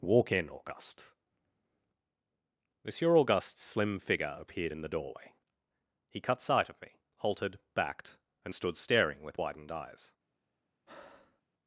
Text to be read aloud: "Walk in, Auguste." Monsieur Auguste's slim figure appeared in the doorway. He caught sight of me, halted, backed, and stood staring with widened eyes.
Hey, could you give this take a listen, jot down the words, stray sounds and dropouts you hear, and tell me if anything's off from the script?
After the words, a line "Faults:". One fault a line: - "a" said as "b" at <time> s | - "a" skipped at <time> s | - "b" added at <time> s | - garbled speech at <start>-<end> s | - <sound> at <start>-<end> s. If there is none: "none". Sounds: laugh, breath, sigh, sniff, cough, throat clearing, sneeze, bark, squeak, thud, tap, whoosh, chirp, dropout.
"Walk in, Auguste." Monsieur Auguste's slim figure appeared in the doorway. He cut sight of me, halted, backed, and stood staring with widened eyes.
Faults:
- "caught" said as "cut" at 6.2 s
- breath at 10.9-11.4 s